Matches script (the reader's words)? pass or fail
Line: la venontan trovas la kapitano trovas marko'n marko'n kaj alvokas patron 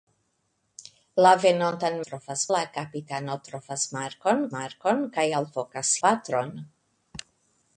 pass